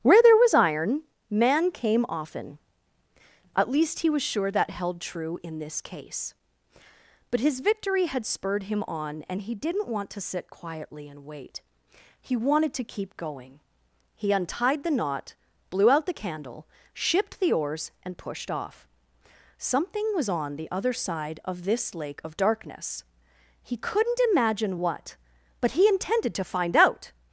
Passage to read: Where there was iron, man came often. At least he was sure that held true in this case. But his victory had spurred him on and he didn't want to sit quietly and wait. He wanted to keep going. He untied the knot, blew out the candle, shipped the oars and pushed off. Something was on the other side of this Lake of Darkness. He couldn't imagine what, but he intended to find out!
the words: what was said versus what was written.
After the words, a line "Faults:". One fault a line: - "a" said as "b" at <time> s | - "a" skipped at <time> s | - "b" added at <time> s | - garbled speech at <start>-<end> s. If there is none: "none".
Where there was iron, man came often. At least he was sure that held true in this case. But his victory had spurred him on and he didn't want to sit quietly and wait. He wanted to keep going. He untied the knot, blew out the candle, shipped the oars and pushed off. Something was on the other side of this Lake of Darkness. He couldn't imagine what, but he intended to find out!
Faults:
none